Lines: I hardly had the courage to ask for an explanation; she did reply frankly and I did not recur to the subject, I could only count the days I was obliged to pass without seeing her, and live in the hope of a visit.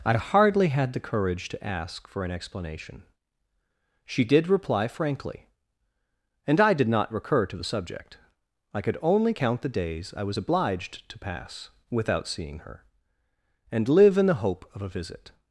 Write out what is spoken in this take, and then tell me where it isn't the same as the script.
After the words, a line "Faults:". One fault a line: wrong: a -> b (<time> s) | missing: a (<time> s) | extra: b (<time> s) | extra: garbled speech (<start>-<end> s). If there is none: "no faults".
I hardly had the courage to ask for an explanation; she did reply frankly and I did not recur to the subject, I could only count the days I was obliged to pass without seeing her, and live in the hope of a visit.
Faults:
no faults